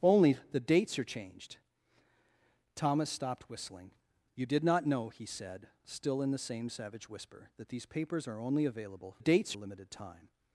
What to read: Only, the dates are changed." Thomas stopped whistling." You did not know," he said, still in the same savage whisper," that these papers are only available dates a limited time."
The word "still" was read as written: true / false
true